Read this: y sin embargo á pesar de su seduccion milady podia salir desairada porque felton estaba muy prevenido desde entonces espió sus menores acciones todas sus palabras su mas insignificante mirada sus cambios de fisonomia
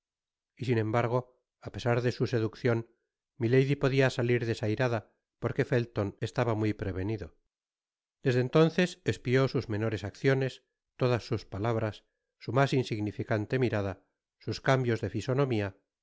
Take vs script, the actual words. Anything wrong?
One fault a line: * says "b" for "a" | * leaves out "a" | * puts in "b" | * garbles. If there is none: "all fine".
all fine